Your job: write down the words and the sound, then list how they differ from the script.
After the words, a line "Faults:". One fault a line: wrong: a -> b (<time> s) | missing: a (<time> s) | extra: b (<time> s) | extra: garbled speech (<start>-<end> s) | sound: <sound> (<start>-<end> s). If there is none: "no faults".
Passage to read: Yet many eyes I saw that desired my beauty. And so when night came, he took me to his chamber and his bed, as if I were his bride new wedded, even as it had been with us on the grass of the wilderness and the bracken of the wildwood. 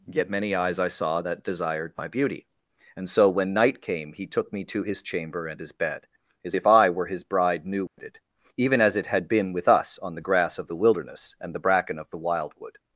Yet many eyes I saw that desired my beauty. And so when night came, he took me to his chamber and his bed, as if I were his bride new wedded, even as it had been with us on the grass of the wilderness and the bracken of the wildwood.
Faults:
sound: dropout (7.9-8.0 s)